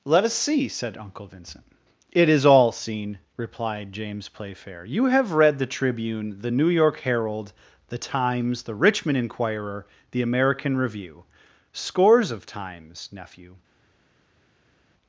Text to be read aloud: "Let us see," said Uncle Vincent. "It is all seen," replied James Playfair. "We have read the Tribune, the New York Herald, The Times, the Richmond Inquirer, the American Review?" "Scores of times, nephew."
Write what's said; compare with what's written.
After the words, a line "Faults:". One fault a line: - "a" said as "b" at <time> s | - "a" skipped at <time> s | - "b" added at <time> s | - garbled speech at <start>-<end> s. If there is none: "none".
"Let us see," said Uncle Vincent. "It is all seen," replied James Playfair. "You have read the Tribune, the New York Herald, The Times, the Richmond Inquirer, the American Review?" "Scores of times, nephew."
Faults:
- "We" said as "You" at 4.8 s